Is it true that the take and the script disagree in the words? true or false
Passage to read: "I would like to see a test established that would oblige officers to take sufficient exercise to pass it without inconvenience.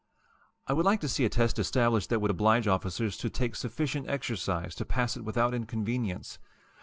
false